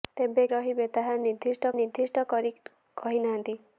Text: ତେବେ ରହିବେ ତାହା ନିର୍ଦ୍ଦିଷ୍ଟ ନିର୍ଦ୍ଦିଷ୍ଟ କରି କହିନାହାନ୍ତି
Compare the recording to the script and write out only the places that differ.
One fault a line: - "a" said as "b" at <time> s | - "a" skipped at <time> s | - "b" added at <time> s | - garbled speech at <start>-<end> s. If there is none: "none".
none